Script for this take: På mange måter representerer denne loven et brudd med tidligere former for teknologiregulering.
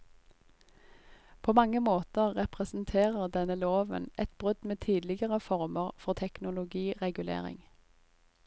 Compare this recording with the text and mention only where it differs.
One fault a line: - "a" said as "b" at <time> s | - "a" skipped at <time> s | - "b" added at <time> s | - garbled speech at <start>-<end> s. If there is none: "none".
none